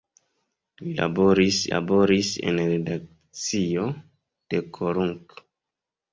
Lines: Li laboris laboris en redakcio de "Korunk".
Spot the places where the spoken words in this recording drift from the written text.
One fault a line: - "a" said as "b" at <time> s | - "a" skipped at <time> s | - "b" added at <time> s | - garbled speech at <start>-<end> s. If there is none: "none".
none